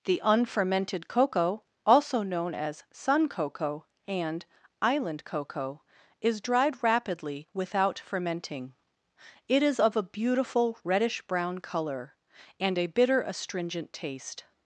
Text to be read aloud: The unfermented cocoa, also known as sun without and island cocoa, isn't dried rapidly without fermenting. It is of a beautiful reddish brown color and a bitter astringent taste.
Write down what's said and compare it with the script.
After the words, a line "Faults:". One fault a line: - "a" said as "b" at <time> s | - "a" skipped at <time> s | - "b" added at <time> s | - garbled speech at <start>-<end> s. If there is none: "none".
The unfermented cocoa, also known as sun cocoa and island cocoa, is dried rapidly without fermenting. It is of a beautiful reddish brown color and a bitter astringent taste.
Faults:
- "without" said as "cocoa" at 3.3 s
- "isn't" said as "is" at 6.2 s